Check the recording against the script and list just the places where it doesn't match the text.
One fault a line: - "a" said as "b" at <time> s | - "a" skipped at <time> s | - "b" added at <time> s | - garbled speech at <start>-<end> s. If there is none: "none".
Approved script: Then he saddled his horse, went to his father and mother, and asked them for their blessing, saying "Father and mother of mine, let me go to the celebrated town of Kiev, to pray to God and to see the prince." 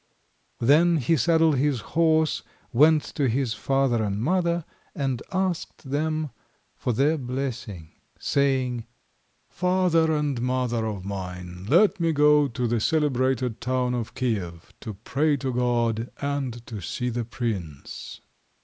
none